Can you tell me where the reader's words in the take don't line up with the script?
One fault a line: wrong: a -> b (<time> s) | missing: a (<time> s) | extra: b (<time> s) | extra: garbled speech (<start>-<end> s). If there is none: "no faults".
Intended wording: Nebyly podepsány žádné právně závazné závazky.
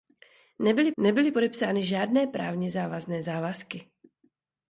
extra: nebyly (1.0 s)